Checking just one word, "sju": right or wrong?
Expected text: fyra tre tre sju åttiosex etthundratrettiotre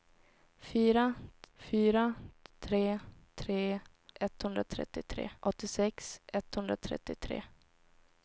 wrong